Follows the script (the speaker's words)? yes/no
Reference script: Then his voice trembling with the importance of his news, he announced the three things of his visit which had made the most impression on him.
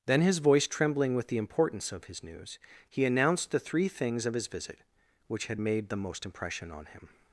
yes